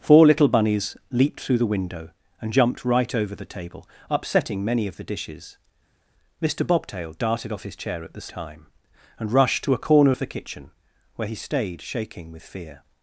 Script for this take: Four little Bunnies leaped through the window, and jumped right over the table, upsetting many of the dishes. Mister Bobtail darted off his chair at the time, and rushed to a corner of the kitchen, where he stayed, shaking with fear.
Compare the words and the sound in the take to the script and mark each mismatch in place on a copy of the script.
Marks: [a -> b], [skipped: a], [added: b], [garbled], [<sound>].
Four little Bunnies leaped through the window, and jumped right over the table, upsetting many of the dishes. Mister Bobtail darted off his chair at the time, and rushed to a corner of the kitchen, where he stayed, shaking with fear.